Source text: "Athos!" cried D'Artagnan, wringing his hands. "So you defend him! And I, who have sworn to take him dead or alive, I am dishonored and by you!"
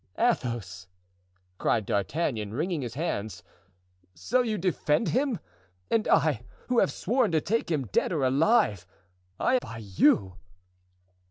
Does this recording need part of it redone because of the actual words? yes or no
yes